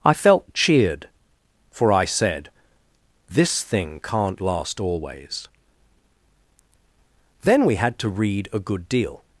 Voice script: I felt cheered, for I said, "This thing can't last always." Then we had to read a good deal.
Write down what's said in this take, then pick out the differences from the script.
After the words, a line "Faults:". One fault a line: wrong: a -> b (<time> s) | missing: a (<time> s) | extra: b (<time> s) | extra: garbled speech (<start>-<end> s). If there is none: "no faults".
I felt cheered, for I said, "This thing can't last always." Then we had to read a good deal.
Faults:
no faults